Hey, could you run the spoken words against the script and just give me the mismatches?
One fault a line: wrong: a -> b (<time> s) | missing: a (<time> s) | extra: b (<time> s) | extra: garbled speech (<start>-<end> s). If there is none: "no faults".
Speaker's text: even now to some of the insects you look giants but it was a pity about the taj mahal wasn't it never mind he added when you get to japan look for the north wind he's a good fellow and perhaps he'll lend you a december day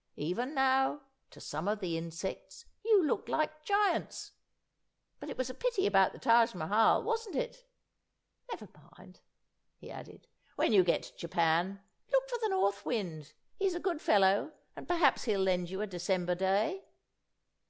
extra: like (3.3 s)